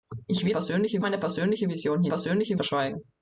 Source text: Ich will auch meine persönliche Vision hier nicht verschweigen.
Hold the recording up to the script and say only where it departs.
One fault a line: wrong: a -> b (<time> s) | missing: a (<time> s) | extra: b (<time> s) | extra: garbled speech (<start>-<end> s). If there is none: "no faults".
wrong: auch -> persönliche (0.5 s)
wrong: nicht -> persönliche (2.1 s)